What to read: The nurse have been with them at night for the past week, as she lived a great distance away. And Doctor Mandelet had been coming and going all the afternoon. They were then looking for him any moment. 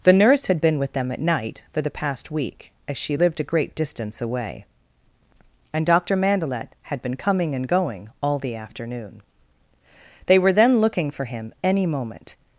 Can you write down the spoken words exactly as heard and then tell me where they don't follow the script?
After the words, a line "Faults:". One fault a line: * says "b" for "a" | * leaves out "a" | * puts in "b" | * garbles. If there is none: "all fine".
The nurse had been with them at night for the past week, as she lived a great distance away. And Doctor Mandelet had been coming and going all the afternoon. They were then looking for him any moment.
Faults:
* says "had" for "have"